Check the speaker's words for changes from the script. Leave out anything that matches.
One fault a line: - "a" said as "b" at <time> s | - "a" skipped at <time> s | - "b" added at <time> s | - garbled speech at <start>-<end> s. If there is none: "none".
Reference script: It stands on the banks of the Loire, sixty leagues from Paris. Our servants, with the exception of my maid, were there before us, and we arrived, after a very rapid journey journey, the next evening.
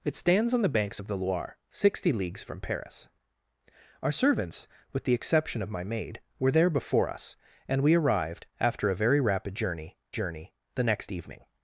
none